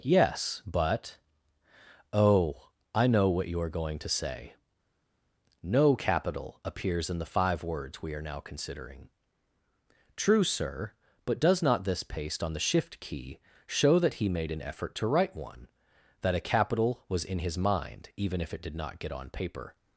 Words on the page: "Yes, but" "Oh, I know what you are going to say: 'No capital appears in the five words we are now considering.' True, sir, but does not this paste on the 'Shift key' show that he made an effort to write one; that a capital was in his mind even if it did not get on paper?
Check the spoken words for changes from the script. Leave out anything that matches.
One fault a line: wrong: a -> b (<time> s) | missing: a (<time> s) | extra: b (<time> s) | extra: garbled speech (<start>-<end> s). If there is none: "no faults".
no faults